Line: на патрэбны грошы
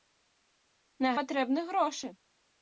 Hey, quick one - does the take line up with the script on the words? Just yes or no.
yes